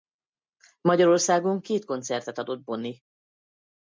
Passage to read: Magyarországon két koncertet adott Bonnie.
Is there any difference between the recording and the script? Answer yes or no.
no